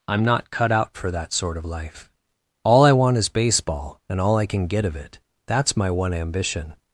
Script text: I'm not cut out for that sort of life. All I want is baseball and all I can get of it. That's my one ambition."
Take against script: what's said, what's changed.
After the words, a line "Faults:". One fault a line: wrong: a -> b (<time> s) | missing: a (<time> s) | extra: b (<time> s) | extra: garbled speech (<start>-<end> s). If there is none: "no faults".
I'm not cut out for that sort of life. All I want is baseball and all I can get of it. That's my one ambition."
Faults:
no faults